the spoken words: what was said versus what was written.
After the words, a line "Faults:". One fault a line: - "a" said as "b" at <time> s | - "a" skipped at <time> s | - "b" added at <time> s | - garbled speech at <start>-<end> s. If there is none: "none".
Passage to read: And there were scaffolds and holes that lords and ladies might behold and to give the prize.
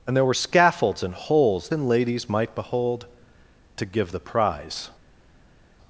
And there were scaffolds and holes and ladies might behold to give the prize.
Faults:
- "that lords" skipped at 1.7 s
- "and" skipped at 3.1 s